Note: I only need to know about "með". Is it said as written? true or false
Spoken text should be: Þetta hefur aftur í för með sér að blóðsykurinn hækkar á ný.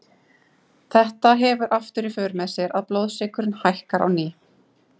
true